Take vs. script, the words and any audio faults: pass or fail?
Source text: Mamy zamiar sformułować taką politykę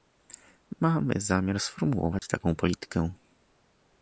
fail